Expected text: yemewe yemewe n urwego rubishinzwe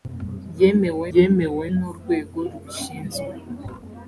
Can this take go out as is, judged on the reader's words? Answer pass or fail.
pass